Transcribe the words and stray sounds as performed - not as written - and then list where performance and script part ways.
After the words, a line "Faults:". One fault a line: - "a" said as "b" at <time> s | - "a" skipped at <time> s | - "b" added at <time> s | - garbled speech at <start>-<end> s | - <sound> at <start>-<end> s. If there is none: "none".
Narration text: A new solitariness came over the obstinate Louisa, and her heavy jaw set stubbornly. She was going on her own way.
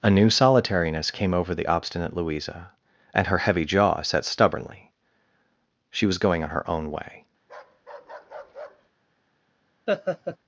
A new solitariness came over the obstinate Louisa, and her heavy jaw set stubbornly. She was going on her own way.
Faults:
- bark at 7.4-8.9 s
- laugh at 9.9-10.4 s